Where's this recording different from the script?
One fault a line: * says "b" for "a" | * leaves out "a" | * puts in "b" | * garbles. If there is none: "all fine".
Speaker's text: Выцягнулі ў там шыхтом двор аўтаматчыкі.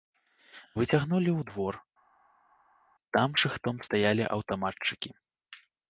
* puts in "двор"
* says "стаялі" for "двор"